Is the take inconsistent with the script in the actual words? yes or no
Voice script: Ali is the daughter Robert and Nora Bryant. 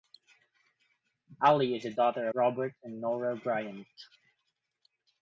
no